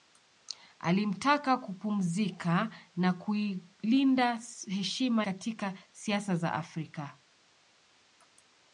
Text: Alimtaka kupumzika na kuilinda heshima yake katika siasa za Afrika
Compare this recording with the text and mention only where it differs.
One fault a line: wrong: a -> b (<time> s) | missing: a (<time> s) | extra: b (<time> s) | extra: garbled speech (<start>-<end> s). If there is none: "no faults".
missing: yake (5.3 s)